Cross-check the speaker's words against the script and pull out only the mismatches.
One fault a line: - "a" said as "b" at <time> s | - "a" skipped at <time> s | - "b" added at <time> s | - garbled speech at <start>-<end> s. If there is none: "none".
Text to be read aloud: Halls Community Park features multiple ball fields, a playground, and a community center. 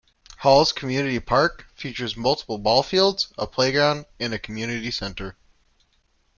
none